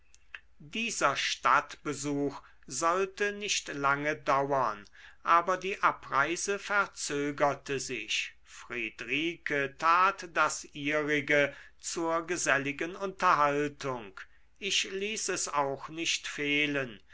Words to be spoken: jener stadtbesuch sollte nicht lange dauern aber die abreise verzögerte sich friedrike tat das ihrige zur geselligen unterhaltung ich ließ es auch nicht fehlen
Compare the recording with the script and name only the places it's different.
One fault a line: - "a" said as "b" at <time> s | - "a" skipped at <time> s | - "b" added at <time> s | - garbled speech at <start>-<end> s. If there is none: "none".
- "jener" said as "dieser" at 0.6 s